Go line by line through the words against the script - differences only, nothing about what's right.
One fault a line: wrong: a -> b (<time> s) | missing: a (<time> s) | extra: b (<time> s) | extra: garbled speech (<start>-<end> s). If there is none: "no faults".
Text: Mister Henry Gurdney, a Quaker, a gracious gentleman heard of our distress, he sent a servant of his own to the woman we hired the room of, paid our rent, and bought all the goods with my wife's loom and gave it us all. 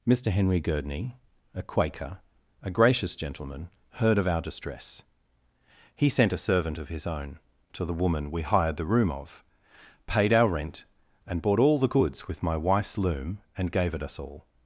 no faults